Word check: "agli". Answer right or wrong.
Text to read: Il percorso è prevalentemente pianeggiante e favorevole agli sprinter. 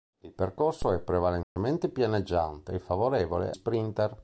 wrong